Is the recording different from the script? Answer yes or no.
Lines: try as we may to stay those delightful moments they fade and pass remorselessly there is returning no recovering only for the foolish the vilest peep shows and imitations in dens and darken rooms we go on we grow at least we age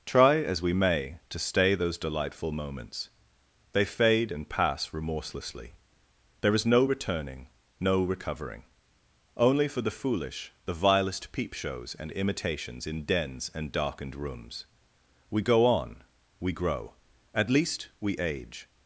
yes